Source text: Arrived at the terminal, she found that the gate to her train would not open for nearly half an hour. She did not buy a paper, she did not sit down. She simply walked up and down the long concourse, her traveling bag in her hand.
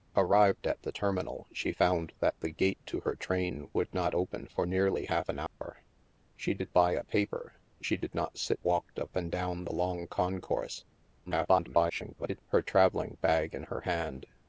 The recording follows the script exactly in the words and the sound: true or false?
false